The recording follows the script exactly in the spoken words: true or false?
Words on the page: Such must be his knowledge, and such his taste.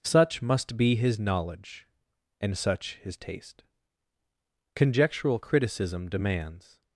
false